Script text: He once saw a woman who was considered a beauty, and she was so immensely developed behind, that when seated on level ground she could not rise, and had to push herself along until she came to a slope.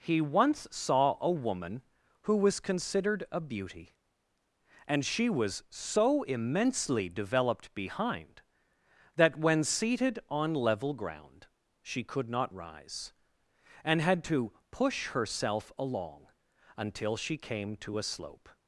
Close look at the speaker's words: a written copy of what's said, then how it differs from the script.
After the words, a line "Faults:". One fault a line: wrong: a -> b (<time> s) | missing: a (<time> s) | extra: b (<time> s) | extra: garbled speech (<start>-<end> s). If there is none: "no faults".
He once saw a woman who was considered a beauty, and she was so immensely developed behind, that when seated on level ground she could not rise, and had to push herself along until she came to a slope.
Faults:
no faults